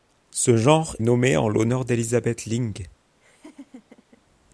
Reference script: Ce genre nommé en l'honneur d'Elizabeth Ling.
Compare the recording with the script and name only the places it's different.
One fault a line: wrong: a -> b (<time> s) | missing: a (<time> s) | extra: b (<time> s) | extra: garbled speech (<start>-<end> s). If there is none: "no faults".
no faults